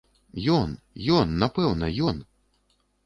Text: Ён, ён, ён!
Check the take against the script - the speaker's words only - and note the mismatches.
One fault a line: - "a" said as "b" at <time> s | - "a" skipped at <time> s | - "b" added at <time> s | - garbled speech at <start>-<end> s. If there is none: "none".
- "напэўна" added at 1.4 s